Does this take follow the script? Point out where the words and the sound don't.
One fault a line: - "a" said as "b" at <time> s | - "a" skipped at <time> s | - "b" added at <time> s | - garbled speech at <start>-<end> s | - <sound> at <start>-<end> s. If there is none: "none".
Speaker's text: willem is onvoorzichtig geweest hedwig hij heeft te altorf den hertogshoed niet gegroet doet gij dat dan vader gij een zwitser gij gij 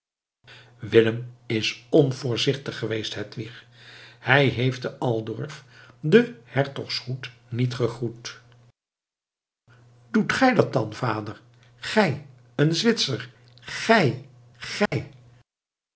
- dropout at 14.9-14.9 s